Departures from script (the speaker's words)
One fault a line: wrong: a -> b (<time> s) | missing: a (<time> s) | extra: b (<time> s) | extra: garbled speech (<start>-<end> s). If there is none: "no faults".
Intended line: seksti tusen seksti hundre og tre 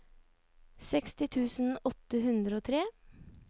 wrong: seksti -> åtte (1.9 s)